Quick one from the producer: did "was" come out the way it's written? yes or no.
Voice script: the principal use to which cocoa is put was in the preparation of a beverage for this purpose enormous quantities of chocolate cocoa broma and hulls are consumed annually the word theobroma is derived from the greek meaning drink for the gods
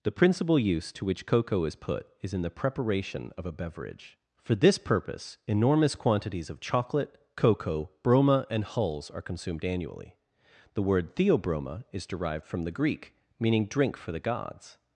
no